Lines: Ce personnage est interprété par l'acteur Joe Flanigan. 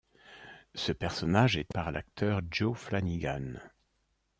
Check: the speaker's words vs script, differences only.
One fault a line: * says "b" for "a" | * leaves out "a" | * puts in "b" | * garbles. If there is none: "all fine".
* leaves out "interprété"